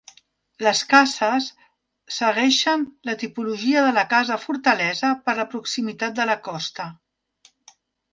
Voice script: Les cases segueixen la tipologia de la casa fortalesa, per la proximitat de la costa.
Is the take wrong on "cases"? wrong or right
right